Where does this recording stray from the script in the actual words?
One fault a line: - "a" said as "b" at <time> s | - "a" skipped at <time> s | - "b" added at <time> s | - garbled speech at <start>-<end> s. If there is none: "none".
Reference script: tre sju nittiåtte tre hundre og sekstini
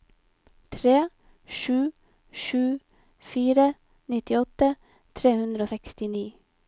- "sju fire" added at 2.4 s